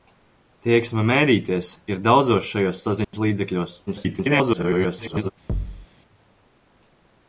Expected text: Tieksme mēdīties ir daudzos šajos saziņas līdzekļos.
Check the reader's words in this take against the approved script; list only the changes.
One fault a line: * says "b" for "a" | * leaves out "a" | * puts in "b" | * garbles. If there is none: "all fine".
* garbles